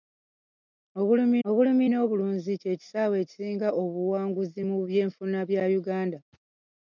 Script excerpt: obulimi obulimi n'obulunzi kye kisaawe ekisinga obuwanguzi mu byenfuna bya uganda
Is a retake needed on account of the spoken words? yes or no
no